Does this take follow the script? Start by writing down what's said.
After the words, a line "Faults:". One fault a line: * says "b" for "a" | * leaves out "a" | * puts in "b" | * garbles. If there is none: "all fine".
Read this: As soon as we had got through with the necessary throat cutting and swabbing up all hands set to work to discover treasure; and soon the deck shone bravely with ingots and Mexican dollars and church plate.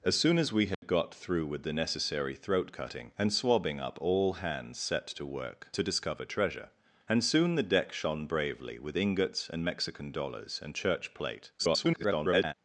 As soon as we had got through with the necessary throat cutting and swabbing up all hands set to work to discover treasure; and soon the deck shone bravely with ingots and Mexican dollars and church plate. [garbled]
Faults:
* garbles